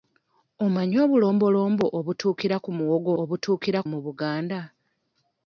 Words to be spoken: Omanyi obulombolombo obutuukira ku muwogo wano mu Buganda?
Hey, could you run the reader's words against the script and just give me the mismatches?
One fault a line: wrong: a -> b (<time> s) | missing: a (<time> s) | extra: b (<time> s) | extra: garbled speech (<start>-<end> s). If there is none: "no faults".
wrong: wano -> obutuukira (3.2 s)